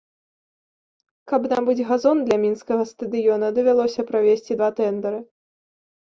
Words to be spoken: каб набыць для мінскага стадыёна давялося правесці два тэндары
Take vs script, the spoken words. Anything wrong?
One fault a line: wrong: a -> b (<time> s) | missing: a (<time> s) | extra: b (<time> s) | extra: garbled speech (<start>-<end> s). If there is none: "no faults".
extra: газон (1.9 s)